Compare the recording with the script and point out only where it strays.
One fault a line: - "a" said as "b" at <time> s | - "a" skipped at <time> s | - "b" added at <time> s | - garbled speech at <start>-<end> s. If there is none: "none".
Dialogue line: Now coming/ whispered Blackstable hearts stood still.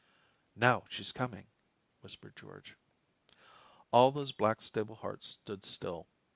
- "she's" added at 0.9 s
- "George All those" added at 2.4 s